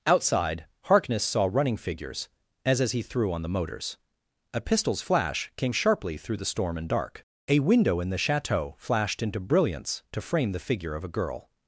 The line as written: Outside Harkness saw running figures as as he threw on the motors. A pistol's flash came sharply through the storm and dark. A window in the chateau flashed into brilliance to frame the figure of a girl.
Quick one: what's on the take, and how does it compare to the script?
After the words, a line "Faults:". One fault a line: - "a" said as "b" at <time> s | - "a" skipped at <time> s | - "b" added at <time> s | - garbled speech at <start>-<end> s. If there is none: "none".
Outside Harkness saw running figures as as he threw on the motors. A pistol's flash came sharply through the storm and dark. A window in the chateau flashed into brilliance to frame the figure of a girl.
Faults:
none